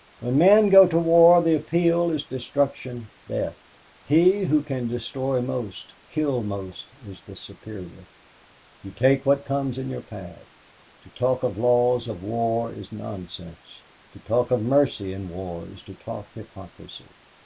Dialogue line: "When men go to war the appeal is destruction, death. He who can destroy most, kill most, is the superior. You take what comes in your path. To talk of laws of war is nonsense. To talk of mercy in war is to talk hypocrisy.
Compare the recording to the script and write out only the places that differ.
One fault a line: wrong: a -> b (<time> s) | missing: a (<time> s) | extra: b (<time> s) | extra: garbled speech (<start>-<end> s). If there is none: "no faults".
no faults